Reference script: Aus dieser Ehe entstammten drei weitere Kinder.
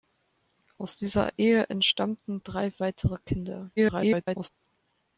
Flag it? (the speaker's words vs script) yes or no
yes